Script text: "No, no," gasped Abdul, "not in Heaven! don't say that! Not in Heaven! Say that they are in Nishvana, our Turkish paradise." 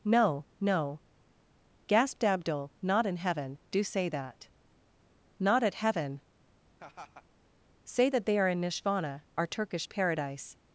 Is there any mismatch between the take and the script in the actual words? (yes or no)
yes